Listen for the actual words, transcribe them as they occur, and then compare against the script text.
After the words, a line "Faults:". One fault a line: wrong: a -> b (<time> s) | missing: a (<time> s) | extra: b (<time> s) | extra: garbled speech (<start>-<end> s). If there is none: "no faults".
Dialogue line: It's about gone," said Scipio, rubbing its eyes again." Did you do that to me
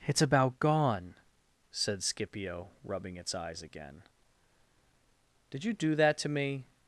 It's about gone," said Scipio, rubbing its eyes again." Did you do that to me
Faults:
no faults